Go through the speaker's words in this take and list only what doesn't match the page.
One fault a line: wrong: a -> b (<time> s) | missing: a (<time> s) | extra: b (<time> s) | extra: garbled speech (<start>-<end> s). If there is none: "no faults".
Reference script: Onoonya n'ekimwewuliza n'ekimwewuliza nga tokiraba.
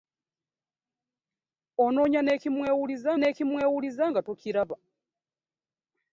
no faults